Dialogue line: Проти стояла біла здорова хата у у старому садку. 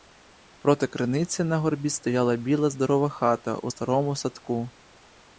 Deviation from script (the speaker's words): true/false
true